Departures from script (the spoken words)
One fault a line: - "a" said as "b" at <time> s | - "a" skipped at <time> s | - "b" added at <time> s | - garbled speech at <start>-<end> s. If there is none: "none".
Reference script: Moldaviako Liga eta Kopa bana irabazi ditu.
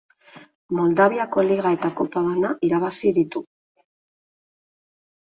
none